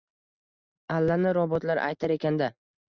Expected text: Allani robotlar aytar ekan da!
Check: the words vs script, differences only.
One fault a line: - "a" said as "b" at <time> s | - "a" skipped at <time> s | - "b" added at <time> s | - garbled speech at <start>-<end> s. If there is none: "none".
none